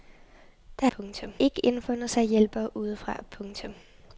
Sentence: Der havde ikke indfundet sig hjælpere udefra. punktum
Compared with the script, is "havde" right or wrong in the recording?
wrong